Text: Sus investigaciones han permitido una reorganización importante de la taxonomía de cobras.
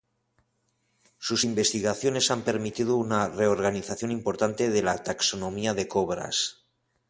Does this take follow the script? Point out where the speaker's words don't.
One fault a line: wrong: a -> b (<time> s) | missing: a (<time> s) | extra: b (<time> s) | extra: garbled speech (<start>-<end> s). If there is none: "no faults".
no faults